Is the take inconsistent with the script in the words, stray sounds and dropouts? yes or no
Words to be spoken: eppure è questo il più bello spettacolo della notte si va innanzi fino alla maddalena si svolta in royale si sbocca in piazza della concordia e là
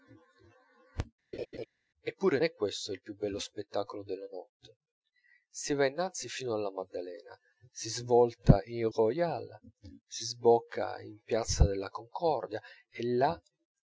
yes